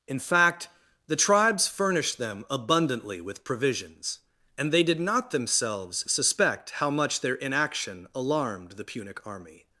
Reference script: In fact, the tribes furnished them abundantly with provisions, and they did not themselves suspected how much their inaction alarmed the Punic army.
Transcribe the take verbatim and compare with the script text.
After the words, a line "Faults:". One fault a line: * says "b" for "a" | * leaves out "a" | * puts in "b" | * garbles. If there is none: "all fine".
In fact, the tribes furnished them abundantly with provisions, and they did not themselves suspect how much their inaction alarmed the Punic army.
Faults:
* says "suspect" for "suspected"